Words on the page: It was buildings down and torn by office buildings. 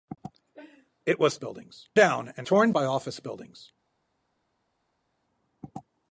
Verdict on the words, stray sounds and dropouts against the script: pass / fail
pass